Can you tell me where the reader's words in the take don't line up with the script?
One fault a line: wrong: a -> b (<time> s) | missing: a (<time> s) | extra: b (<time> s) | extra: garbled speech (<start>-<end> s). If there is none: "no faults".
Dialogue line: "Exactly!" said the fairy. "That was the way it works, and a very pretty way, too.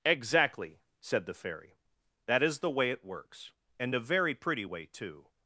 wrong: was -> is (2.4 s)